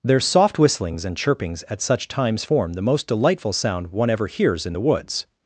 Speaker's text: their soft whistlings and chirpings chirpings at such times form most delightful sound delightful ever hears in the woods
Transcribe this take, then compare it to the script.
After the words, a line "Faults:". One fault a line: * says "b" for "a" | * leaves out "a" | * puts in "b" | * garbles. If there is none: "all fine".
their soft whistlings and chirpings at such times form the most delightful sound one ever hears in the woods
Faults:
* leaves out "chirpings"
* puts in "the"
* says "one" for "delightful"